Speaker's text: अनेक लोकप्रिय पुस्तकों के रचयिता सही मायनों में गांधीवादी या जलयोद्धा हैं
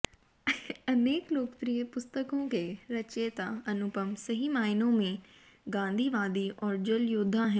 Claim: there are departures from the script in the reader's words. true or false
true